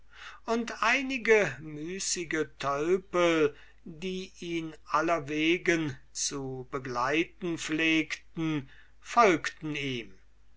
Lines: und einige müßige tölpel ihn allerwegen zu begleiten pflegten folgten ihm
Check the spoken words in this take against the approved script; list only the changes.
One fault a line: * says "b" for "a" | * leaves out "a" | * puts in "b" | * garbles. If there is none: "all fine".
* puts in "die"